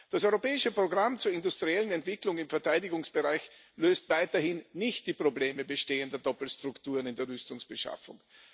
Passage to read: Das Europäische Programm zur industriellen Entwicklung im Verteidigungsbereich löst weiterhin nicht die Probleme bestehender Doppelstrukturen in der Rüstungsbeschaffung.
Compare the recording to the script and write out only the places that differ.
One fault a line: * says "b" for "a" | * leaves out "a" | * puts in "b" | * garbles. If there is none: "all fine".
all fine